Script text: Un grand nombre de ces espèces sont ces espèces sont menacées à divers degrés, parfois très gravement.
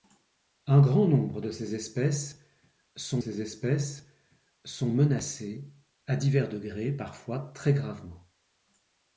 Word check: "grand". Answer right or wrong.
right